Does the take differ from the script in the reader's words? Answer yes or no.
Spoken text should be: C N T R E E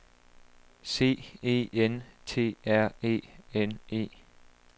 yes